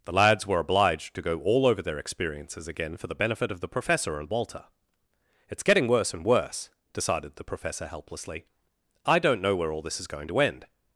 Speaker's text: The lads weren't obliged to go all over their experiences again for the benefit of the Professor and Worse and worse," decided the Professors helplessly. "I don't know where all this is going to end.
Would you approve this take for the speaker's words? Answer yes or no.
no